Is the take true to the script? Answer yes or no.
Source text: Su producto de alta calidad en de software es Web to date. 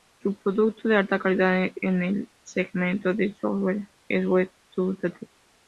no